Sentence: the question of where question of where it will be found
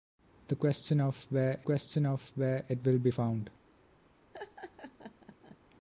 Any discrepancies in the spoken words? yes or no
no